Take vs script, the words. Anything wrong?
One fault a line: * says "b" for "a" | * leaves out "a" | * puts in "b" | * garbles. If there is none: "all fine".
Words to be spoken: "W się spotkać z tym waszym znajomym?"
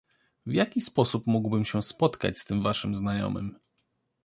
* puts in "jaki sposób mógłbym"